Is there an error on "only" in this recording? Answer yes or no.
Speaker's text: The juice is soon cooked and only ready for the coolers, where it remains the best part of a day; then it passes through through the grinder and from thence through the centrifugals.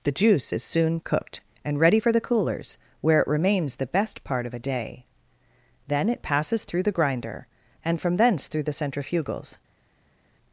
yes